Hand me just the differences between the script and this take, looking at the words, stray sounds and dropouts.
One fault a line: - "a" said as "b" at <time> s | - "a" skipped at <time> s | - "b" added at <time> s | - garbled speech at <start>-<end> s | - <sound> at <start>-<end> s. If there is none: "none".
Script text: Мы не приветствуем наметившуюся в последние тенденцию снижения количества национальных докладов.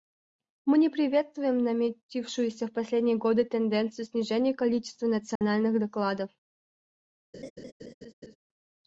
- "годы" added at 3.2 s
- dropout at 5.4-5.4 s
- laugh at 7.3-8.4 s